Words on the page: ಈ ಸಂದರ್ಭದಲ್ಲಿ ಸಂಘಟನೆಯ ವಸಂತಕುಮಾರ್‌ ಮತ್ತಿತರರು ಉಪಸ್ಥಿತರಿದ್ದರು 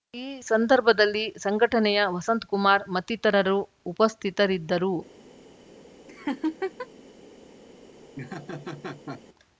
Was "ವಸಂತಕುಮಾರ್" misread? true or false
false